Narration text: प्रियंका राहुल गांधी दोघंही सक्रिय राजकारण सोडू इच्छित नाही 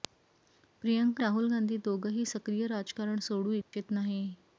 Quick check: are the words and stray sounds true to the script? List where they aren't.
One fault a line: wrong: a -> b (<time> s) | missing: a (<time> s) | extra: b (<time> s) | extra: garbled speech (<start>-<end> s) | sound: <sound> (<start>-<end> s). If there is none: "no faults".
sound: dropout (3.6-3.7 s)